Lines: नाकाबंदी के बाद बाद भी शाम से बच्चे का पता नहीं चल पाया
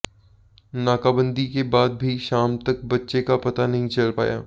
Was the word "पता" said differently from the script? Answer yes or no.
no